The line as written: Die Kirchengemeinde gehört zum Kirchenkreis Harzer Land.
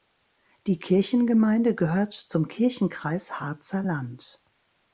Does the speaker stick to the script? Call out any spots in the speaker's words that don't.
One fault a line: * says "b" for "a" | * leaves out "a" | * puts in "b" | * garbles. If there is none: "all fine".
all fine